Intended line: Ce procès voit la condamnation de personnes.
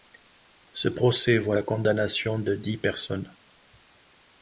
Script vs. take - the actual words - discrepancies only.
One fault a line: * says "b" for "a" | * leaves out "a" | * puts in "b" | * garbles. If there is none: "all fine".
* puts in "dix"